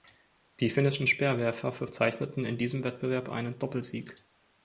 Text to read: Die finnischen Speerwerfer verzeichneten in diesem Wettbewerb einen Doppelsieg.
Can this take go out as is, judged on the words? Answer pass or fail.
pass